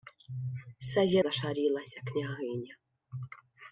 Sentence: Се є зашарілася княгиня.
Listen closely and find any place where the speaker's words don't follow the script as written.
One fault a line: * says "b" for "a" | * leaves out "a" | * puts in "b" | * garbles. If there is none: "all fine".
all fine